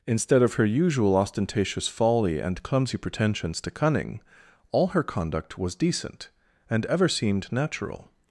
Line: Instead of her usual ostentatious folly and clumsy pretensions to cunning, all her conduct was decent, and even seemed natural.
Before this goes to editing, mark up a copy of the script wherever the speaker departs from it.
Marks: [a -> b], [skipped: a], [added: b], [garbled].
Instead of her usual ostentatious folly and clumsy pretensions to cunning, all her conduct was decent, and [even -> ever] seemed natural.